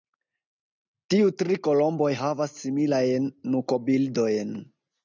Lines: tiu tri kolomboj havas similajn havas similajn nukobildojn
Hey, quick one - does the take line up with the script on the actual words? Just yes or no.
no